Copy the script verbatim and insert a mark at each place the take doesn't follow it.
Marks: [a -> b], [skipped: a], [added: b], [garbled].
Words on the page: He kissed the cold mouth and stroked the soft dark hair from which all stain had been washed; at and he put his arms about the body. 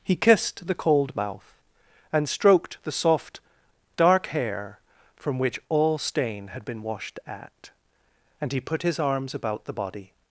He kissed the cold mouth and stroked the soft dark hair from which all stain had been washed; at and he put his arms about the body.